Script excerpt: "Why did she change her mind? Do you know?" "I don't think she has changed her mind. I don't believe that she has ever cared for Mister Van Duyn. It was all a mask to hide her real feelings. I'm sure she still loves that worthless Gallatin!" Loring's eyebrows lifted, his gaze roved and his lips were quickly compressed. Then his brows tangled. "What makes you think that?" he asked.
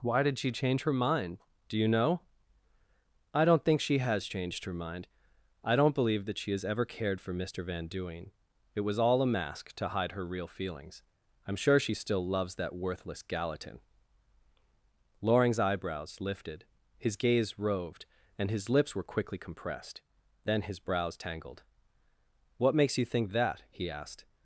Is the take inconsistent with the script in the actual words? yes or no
no